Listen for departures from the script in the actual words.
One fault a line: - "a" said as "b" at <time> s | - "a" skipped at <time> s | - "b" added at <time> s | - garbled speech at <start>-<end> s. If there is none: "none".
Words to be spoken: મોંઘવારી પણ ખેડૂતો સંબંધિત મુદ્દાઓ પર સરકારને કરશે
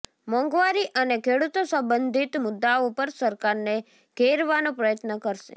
- "પણ" said as "અને" at 0.9 s
- "ઘેરવાનો પ્રયત્ન" added at 4.2 s